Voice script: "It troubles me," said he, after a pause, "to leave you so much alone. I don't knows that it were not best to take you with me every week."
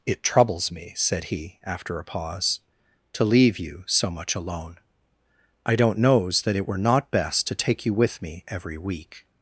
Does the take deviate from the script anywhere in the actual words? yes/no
no